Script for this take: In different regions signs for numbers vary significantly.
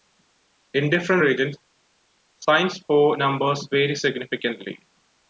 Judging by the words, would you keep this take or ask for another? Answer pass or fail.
pass